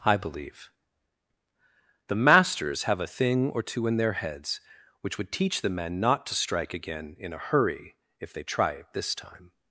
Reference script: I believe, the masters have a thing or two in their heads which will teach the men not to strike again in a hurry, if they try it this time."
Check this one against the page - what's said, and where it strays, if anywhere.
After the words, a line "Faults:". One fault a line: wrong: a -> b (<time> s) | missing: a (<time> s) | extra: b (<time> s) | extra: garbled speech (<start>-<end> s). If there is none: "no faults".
I believe, the masters have a thing or two in their heads which would teach the men not to strike again in a hurry, if they try it this time."
Faults:
wrong: will -> would (5.2 s)